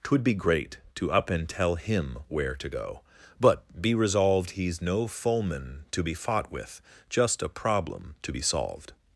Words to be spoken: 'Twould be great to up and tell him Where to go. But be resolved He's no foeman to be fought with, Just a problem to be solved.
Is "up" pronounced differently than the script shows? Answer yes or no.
no